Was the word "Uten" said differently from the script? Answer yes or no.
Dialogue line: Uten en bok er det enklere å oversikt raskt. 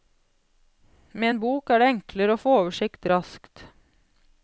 yes